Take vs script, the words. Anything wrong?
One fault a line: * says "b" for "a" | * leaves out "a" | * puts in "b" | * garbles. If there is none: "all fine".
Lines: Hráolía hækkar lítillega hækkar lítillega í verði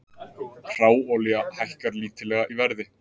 * leaves out "hækkar lítillega"